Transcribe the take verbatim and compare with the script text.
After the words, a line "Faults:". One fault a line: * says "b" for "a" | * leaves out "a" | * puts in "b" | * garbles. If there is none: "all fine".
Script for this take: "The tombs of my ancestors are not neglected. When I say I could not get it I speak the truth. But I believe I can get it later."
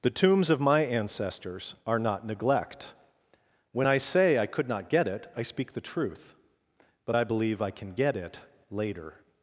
"The tombs of my ancestors are not neglect. When I say I could not get it I speak the truth. But I believe I can get it later."
Faults:
* says "neglect" for "neglected"